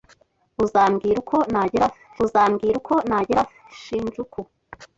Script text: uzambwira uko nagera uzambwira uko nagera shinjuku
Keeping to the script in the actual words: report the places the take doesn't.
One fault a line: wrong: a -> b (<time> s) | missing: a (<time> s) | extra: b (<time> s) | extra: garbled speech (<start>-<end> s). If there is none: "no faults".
no faults